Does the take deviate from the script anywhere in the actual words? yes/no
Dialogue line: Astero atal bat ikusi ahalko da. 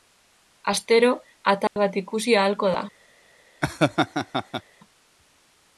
no